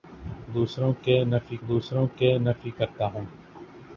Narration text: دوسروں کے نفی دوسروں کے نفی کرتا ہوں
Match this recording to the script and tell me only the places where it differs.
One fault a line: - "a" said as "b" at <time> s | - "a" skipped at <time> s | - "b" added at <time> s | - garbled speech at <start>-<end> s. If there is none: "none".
none